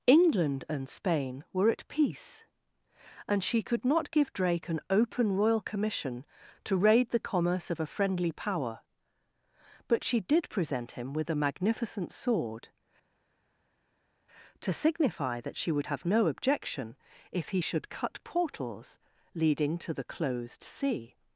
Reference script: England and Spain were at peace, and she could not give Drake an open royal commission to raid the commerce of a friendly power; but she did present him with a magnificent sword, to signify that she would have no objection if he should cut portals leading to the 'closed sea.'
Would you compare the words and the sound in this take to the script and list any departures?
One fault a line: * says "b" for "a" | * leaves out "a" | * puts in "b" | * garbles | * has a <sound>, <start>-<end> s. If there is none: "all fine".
all fine